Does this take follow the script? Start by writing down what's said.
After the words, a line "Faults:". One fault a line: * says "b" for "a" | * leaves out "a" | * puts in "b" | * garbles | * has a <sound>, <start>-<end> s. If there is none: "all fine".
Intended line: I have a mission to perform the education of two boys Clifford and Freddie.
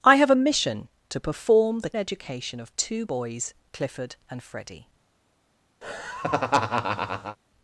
I have a mission to perform the education of two boys Clifford and Freddie.
Faults:
* has a laugh, 5.8-7.4 s